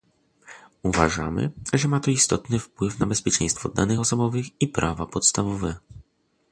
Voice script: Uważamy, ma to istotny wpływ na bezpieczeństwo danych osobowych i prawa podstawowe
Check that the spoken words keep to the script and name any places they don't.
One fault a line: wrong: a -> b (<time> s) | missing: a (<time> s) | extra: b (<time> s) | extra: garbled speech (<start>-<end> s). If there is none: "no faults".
extra: że (1.7 s)